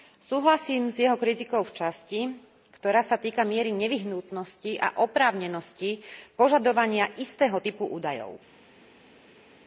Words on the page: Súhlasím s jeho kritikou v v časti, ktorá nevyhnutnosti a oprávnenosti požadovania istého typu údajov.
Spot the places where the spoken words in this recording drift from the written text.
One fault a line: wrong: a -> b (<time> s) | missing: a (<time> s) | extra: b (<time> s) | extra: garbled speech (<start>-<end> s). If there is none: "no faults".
missing: v (1.8 s)
extra: sa týka miery (3.0 s)